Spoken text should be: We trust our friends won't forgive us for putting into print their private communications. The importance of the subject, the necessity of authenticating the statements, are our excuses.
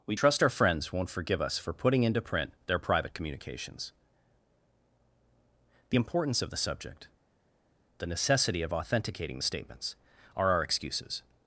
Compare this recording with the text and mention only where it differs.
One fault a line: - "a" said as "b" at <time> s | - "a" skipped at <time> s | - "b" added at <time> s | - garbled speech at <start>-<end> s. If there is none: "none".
none